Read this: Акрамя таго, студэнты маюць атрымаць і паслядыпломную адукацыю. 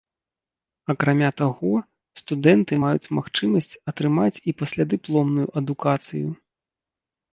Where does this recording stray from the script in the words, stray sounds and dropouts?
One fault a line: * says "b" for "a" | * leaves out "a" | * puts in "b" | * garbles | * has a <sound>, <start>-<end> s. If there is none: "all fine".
* puts in "магчымасць"